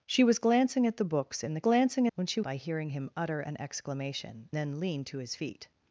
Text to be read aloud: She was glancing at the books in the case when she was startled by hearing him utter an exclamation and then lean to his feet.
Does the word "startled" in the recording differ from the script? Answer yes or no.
yes